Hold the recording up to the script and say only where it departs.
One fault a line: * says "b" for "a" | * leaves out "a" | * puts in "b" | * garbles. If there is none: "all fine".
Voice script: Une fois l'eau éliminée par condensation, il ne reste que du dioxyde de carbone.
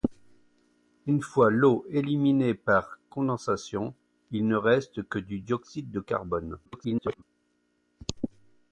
* garbles